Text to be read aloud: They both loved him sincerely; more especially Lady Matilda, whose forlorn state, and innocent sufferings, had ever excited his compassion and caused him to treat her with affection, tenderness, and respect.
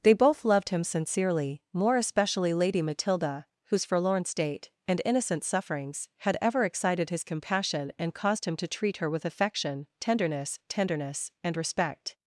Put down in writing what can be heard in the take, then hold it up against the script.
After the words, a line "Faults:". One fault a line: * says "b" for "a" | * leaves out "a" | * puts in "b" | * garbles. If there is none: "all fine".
They both loved him sincerely; more especially Lady Matilda, whose forlorn state, and innocent sufferings, had ever excited his compassion and caused him to treat her with affection, tenderness tenderness, and respect.
Faults:
* puts in "tenderness"